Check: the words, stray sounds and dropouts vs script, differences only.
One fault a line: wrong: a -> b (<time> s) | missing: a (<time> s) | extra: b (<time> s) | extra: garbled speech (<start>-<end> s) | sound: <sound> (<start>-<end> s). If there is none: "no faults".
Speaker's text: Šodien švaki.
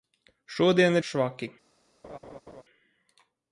sound: laugh (2.0-2.6 s)